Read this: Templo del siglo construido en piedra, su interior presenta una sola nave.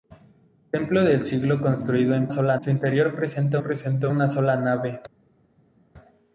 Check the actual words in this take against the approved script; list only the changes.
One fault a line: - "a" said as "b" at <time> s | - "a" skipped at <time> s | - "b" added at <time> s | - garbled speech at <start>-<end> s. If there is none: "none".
- "piedra" said as "sola" at 2.3 s
- "presenta" added at 3.6 s